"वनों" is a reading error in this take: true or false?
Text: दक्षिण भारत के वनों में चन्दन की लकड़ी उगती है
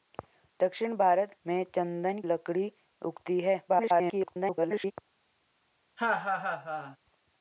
true